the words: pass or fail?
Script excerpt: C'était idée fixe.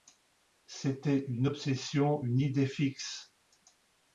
fail